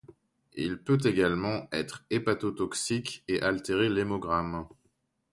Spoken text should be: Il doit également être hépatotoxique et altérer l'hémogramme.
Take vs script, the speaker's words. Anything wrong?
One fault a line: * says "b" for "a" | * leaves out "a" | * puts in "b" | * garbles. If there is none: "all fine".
* says "peut" for "doit"